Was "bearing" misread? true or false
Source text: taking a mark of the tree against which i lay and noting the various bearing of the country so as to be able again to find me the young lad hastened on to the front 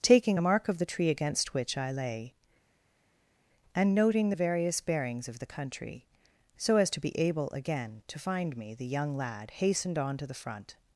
true